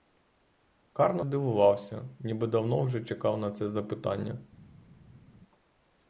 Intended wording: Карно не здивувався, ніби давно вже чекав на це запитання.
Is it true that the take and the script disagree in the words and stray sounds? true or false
true